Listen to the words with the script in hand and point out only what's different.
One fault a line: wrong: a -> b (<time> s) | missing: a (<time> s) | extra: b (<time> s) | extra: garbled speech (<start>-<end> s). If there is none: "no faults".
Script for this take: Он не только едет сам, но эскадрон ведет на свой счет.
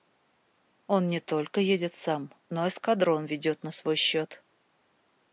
no faults